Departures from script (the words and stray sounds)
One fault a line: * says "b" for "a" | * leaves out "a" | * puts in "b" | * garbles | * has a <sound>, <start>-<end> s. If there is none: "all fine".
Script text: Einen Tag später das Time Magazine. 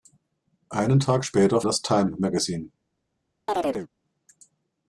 * has a chirp, 3.5-3.9 s